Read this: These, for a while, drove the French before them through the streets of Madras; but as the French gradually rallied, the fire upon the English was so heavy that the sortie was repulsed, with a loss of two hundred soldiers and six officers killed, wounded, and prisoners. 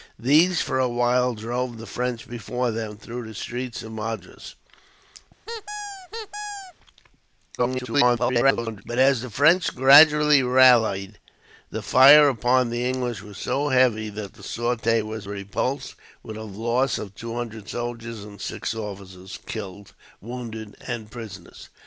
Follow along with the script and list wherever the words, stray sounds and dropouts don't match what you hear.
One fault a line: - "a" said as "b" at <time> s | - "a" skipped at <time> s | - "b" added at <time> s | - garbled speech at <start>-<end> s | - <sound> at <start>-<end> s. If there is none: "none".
- squeak at 5.5-6.7 s
- garbled speech at 7.6-8.8 s